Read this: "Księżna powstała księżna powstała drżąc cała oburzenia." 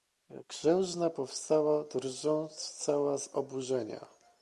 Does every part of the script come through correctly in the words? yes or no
no